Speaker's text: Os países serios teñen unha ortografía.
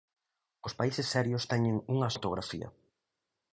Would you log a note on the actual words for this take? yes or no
no